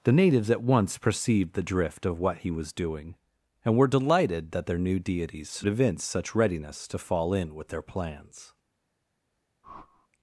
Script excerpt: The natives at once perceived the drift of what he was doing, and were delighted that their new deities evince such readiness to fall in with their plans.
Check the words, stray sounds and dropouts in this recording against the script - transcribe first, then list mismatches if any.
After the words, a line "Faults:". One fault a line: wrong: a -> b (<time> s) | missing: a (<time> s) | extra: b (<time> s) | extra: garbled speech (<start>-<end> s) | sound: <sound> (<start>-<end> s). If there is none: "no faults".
The natives at once perceived the drift of what he was doing, and were delighted that their new deities evince such readiness to fall in with their plans.
Faults:
sound: whoosh (9.6-10.1 s)